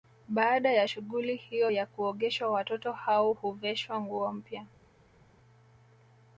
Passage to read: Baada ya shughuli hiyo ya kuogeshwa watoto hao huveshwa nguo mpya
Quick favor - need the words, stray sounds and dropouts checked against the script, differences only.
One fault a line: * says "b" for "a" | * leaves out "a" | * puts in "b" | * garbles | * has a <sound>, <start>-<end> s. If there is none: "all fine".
all fine